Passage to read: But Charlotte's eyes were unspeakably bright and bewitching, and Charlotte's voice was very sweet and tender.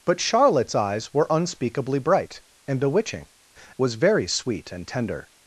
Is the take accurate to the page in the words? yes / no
no